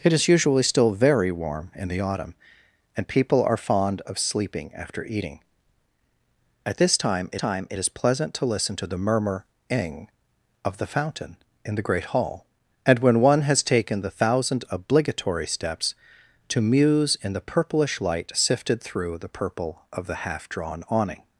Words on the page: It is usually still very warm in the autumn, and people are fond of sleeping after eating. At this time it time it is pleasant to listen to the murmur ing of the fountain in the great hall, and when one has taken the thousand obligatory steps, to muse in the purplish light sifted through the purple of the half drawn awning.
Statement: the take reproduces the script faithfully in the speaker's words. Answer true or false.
true